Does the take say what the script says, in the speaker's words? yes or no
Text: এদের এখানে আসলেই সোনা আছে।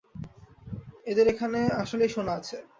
yes